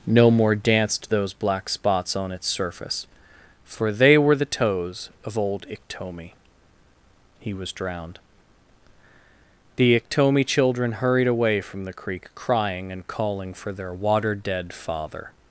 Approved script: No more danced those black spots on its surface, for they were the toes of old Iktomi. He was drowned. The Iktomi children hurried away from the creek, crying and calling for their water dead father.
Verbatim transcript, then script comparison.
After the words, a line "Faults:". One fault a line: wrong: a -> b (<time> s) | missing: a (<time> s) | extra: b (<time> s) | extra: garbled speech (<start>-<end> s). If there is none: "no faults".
No more danced those black spots on its surface, for they were the toes of old Iktomi. He was drowned. The Iktomi children hurried away from the creek, crying and calling for their water dead father.
Faults:
no faults